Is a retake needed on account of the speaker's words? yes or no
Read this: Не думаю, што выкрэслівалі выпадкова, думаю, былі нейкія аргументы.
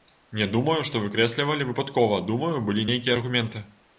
no